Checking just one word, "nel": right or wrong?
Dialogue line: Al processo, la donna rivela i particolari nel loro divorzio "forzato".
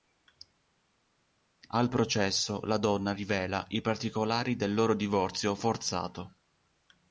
wrong